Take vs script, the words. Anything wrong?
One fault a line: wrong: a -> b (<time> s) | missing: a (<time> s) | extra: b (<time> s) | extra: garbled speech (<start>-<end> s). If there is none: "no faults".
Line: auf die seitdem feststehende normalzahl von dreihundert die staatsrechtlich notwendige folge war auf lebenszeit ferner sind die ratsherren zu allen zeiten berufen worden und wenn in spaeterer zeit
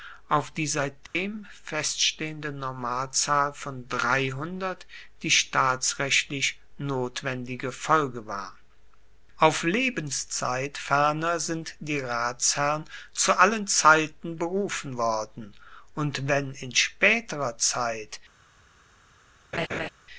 no faults